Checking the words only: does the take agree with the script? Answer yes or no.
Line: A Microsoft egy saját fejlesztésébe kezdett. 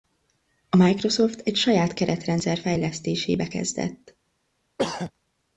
no